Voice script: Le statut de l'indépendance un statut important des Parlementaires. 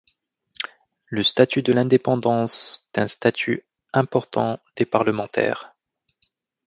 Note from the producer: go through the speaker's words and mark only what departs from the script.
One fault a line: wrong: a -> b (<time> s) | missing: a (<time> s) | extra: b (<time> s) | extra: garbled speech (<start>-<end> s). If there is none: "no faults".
no faults